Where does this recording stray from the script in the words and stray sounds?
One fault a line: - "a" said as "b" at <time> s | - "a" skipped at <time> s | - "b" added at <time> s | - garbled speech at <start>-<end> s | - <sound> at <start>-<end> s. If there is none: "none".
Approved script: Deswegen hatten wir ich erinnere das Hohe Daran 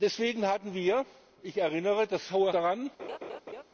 - laugh at 3.0-3.6 s